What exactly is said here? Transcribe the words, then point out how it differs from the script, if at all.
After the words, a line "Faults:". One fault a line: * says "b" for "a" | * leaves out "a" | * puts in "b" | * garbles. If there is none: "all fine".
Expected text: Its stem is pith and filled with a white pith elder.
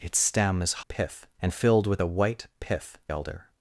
Its stem is pith and filled with a white pith elder.
Faults:
all fine